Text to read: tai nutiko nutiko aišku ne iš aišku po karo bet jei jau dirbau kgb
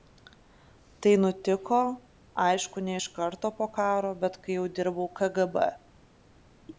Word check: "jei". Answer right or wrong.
wrong